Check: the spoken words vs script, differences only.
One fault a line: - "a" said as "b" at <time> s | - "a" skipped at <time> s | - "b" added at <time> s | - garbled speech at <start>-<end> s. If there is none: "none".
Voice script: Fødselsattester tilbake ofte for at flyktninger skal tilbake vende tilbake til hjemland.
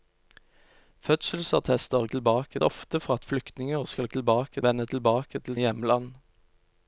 none